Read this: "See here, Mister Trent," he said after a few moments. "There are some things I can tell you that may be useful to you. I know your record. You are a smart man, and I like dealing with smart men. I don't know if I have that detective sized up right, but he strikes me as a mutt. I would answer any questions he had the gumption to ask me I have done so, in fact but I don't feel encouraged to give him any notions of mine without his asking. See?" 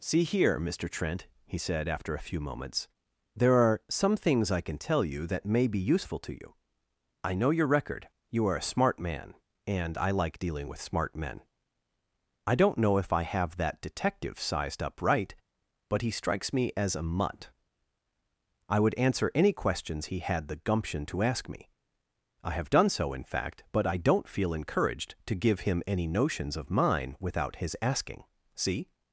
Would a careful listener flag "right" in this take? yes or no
no